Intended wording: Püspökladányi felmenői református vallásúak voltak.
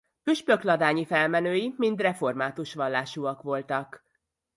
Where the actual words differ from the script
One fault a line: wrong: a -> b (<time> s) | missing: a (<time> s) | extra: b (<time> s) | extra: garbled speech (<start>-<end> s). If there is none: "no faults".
extra: mind (1.8 s)